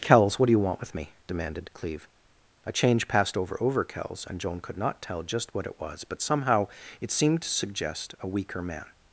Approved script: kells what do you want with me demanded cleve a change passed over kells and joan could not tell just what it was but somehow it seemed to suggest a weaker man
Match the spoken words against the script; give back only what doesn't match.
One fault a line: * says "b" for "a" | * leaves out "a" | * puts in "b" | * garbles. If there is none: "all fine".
* puts in "over"